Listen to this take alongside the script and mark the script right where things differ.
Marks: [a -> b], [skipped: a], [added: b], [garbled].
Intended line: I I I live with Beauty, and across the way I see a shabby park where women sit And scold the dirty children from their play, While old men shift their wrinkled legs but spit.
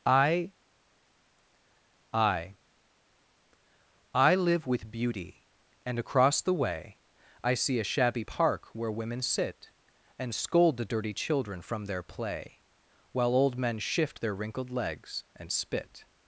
I I I live with Beauty, and across the way I see a shabby park where women sit And scold the dirty children from their play, While old men shift their wrinkled legs [but -> and] spit.